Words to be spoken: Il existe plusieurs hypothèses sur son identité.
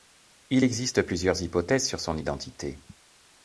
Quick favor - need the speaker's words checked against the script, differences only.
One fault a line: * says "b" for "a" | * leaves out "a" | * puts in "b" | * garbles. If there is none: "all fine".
all fine